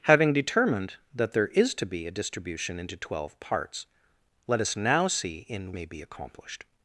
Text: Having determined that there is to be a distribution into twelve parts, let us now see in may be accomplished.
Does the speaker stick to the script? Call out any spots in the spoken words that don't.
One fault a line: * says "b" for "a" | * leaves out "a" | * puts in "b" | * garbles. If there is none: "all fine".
all fine